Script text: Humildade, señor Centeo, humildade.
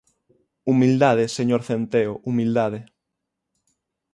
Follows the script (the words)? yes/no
yes